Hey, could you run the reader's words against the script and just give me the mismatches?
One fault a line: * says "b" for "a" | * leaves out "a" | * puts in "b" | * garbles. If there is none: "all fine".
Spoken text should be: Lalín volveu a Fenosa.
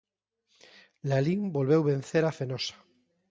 * puts in "vencer"